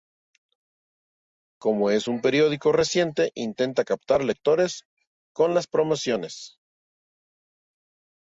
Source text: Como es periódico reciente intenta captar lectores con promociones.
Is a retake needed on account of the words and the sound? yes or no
yes